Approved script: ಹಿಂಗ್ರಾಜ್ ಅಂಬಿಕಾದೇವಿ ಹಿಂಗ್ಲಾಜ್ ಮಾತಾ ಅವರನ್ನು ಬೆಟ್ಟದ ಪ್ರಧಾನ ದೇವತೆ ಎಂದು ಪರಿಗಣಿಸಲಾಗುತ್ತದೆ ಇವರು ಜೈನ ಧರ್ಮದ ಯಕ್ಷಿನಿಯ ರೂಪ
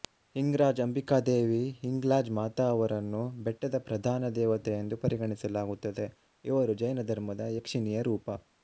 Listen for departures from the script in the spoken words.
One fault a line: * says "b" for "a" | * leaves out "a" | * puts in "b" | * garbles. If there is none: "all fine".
all fine